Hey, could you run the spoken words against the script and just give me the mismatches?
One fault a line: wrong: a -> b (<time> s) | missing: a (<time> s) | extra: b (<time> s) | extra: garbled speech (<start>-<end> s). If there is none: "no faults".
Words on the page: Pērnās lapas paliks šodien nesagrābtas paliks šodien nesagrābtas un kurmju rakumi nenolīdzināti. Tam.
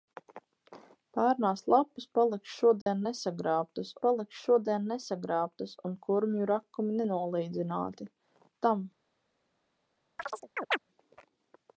no faults